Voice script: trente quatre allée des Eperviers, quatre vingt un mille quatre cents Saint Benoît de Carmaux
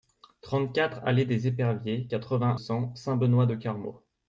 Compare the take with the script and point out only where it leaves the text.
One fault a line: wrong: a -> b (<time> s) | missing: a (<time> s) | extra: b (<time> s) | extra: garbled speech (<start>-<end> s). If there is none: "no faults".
missing: un mille quatre (2.6 s)